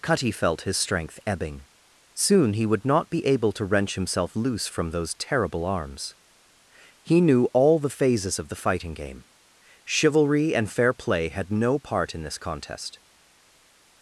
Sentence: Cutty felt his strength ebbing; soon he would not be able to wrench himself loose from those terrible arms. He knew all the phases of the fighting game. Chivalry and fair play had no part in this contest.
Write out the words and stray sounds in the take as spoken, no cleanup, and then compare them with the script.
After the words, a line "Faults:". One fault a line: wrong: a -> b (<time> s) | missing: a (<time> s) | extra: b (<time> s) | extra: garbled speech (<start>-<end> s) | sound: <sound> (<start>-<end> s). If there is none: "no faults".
Cutty felt his strength ebbing; soon he would not be able to wrench himself loose from those terrible arms. He knew all the phases of the fighting game. Chivalry and fair play had no part in this contest.
Faults:
no faults